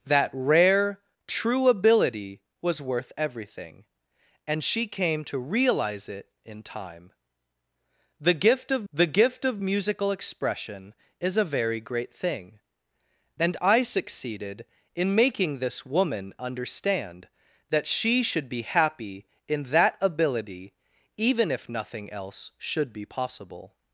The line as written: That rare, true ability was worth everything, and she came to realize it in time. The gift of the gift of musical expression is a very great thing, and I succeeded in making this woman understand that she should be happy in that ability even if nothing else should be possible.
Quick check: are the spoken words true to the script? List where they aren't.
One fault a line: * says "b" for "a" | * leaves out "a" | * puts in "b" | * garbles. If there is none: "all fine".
all fine